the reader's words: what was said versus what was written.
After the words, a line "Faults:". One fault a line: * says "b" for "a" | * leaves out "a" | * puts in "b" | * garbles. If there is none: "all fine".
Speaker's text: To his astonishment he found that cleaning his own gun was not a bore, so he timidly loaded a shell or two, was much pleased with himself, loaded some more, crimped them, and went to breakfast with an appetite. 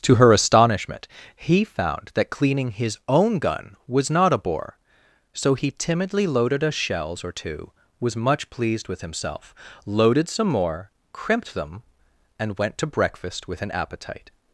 To her astonishment he found that cleaning his own gun was not a bore, so he timidly loaded a shells or two, was much pleased with himself, loaded some more, crimped them, and went to breakfast with an appetite.
Faults:
* says "her" for "his"
* says "shells" for "shell"